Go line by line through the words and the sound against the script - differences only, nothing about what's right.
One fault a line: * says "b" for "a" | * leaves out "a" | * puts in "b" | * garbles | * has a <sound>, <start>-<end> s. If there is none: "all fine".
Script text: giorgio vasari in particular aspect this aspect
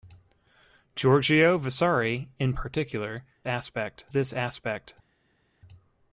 all fine